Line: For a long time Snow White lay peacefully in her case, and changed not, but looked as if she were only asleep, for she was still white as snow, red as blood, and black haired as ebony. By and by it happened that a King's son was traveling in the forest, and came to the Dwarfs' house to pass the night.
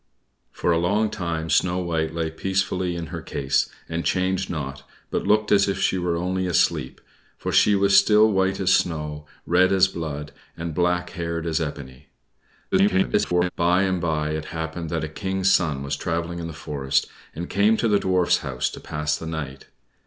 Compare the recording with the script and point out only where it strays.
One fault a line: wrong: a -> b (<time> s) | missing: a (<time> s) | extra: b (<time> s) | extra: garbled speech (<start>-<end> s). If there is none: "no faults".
extra: garbled speech (12.7-13.5 s)